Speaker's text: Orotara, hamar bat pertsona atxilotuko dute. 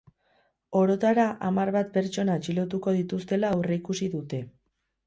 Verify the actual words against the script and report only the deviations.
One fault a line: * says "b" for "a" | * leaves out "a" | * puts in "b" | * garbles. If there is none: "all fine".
* puts in "dituztela aurreikusi"